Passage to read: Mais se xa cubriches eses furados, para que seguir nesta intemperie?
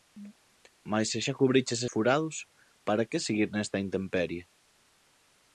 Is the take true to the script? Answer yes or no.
no